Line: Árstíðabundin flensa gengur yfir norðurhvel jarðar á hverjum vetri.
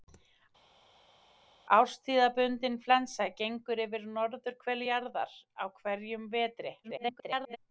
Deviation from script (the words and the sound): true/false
true